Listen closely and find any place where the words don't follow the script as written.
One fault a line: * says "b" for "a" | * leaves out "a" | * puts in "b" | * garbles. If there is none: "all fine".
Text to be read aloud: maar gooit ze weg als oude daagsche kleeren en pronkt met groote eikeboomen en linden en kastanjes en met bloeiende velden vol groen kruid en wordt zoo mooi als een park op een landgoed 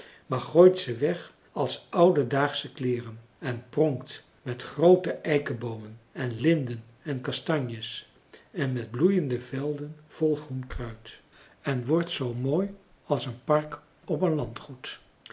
all fine